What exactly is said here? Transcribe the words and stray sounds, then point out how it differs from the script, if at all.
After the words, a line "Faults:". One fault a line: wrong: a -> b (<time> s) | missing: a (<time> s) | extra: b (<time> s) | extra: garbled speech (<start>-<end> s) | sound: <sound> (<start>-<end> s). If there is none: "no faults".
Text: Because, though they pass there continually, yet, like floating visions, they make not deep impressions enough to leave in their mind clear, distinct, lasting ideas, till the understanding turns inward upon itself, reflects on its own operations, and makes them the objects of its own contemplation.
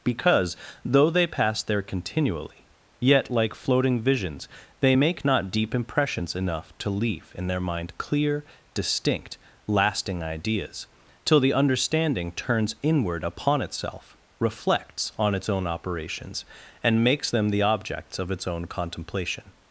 Because, though they pass there continually, yet, like floating visions, they make not deep impressions enough to leave in their mind clear, distinct, lasting ideas, till the understanding turns inward upon itself, reflects on its own operations, and makes them the objects of its own contemplation.
Faults:
no faults